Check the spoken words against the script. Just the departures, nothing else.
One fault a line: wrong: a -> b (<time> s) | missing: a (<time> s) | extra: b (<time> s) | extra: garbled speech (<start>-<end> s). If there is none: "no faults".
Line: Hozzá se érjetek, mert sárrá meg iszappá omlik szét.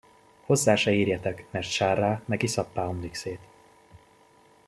no faults